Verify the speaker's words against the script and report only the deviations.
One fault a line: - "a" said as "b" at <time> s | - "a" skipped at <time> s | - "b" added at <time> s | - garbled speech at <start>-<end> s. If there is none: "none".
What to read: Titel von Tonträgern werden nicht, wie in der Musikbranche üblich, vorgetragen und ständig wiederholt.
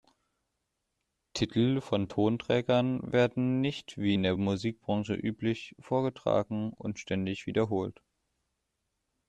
none